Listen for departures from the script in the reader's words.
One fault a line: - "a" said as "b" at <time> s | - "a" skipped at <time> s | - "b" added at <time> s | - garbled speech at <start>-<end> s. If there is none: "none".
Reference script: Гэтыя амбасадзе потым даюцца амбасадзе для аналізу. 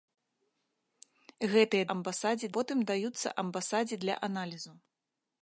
none